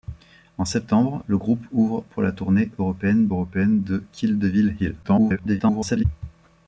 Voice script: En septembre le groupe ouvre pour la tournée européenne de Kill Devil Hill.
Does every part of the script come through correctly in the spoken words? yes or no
no